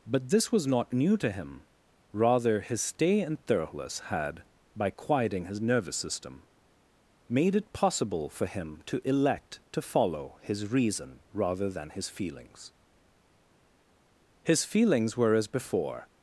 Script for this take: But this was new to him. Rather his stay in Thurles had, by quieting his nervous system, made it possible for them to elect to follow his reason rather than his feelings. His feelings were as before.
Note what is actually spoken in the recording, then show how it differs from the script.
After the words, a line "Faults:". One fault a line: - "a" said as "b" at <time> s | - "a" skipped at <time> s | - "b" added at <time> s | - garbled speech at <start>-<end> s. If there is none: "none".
But this was not new to him. Rather his stay in Thurles had, by quieting his nervous system, made it possible for him to elect to follow his reason rather than his feelings. His feelings were as before.
Faults:
- "not" added at 0.7 s
- "them" said as "him" at 8.5 s